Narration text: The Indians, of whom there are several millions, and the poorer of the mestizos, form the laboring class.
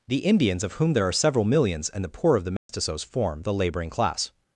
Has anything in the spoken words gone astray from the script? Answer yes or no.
yes